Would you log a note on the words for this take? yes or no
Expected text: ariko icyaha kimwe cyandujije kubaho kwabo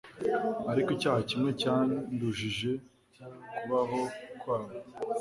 no